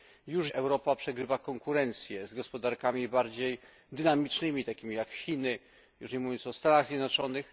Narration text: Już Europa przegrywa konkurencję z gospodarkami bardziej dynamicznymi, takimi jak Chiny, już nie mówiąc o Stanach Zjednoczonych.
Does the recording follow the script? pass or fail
pass